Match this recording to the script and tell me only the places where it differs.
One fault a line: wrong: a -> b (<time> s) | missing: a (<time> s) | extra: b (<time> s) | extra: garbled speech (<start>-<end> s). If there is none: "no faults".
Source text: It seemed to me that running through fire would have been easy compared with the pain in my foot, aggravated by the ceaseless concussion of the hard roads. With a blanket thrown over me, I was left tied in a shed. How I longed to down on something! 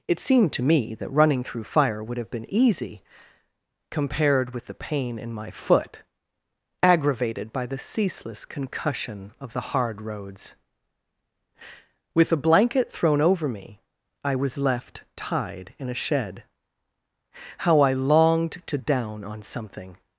no faults